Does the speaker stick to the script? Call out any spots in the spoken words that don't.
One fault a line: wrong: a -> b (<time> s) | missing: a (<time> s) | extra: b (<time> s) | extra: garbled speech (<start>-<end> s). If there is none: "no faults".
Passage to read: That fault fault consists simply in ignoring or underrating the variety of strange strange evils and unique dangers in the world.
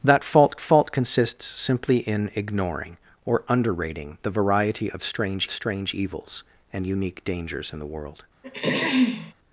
no faults